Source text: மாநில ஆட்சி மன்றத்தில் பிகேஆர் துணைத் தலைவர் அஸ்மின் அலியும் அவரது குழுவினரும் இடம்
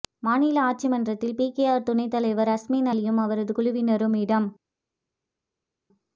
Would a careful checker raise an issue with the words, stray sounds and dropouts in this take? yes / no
no